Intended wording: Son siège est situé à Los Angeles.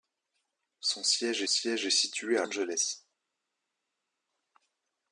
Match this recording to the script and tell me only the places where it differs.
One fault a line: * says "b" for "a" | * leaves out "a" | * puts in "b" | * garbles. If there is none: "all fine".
* puts in "siège"
* leaves out "Los"